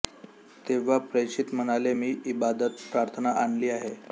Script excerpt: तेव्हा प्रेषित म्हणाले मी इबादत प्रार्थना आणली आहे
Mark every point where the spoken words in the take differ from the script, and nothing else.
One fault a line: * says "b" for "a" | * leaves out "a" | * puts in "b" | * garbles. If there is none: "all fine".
all fine